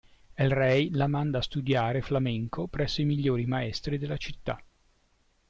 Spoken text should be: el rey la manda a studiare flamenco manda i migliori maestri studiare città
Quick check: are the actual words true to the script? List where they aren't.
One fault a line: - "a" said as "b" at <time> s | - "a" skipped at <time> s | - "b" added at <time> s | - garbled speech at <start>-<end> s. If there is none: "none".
- "manda" said as "presso" at 2.7 s
- "studiare" said as "della" at 4.0 s